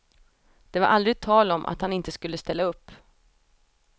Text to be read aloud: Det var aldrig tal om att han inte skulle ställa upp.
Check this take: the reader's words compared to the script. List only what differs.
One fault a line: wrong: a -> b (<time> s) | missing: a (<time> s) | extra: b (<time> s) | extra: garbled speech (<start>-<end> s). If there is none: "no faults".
no faults